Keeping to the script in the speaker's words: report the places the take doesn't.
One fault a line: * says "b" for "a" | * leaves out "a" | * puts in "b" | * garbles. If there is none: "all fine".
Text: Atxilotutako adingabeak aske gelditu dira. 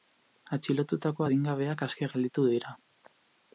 all fine